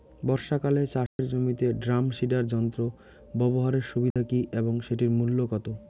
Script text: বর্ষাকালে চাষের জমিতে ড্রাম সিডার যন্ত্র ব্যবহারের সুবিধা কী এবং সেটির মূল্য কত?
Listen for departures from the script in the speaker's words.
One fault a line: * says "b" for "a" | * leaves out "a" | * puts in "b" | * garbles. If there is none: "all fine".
all fine